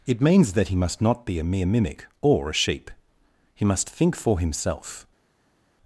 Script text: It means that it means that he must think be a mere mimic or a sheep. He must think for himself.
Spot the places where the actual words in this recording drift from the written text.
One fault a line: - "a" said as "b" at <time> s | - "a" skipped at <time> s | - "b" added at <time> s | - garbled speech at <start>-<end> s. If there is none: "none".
- "it means that" skipped at 0.7 s
- "think" said as "not" at 1.0 s